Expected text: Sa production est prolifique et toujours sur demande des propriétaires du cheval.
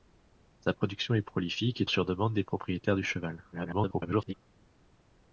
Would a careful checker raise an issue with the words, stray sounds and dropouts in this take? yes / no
yes